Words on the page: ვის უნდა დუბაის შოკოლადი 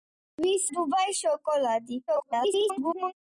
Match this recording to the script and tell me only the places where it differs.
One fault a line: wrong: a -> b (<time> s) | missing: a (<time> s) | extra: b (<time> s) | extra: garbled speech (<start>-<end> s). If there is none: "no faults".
missing: უნდა (0.6 s)
extra: garbled speech (2.1-3.1 s)